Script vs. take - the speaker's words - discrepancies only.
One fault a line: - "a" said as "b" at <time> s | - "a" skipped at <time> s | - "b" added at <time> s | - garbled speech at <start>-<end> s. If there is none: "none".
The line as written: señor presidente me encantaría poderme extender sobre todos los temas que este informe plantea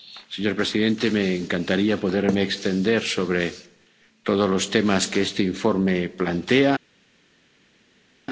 none